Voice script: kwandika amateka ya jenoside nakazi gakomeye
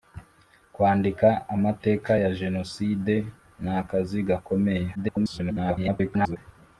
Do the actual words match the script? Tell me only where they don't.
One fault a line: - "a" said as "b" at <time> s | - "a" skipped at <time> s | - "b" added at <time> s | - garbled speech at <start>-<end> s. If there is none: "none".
- garbled speech at 4.9-6.4 s